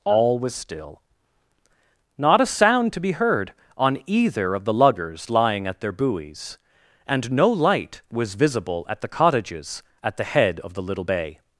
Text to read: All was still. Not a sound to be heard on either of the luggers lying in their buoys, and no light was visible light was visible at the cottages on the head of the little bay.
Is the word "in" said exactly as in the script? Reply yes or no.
no